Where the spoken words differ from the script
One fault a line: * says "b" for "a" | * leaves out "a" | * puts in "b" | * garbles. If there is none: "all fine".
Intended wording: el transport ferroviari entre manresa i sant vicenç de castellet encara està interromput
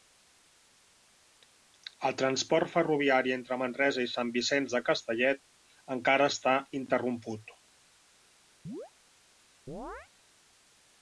all fine